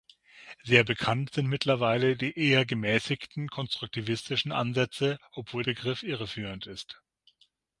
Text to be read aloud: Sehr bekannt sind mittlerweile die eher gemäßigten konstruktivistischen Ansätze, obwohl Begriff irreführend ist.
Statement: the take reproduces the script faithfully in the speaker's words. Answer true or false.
true